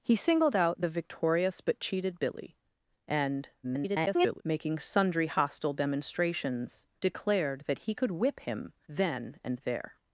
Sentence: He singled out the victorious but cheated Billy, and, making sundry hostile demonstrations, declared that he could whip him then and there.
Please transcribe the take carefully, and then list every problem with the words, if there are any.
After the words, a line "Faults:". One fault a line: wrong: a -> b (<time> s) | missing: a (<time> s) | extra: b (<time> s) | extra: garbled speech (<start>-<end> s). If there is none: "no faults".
He singled out the victorious but cheated Billy, and, [garbled] making sundry hostile demonstrations, declared that he could whip him then and there.
Faults:
extra: garbled speech (3.6-4.4 s)